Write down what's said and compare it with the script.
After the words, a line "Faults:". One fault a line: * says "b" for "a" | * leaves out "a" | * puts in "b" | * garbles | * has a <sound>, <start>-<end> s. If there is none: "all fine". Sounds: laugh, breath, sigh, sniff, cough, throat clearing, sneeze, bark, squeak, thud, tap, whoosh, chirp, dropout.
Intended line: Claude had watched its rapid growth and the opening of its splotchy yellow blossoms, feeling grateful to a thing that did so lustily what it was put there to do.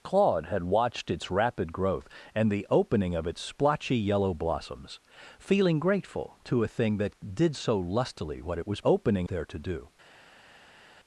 Claude had watched its rapid growth and the opening of its splotchy yellow blossoms, feeling grateful to a thing that did so lustily what it was opening there to do.
Faults:
* says "opening" for "put"